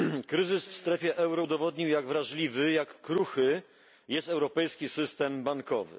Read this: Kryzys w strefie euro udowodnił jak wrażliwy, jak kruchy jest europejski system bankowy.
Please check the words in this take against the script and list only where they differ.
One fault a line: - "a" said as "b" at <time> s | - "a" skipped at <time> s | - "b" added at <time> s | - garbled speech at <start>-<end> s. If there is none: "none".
none